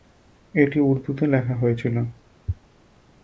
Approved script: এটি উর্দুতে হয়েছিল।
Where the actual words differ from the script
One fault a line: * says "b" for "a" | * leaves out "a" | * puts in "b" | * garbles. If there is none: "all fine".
* puts in "লেখা"